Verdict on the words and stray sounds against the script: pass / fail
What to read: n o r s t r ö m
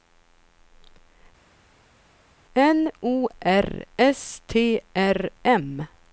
fail